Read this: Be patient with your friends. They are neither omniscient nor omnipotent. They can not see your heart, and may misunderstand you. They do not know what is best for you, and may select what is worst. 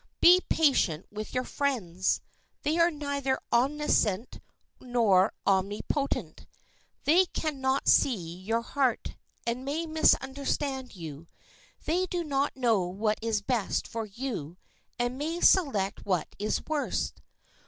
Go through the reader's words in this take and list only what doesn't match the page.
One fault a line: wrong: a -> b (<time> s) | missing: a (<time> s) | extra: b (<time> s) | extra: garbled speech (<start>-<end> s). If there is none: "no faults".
no faults